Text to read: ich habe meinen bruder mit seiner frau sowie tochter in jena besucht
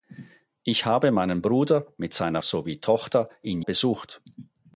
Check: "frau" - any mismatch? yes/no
yes